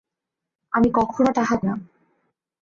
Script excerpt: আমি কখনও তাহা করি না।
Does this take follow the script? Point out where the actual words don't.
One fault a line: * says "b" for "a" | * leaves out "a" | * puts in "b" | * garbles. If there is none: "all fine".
* leaves out "করি"